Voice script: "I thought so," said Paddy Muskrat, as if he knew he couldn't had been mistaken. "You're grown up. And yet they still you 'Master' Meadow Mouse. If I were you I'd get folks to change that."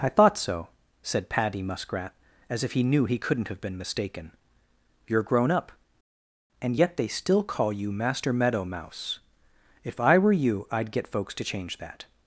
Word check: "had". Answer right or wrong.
wrong